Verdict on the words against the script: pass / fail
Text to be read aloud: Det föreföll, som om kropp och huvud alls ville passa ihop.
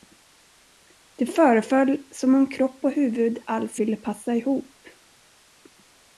pass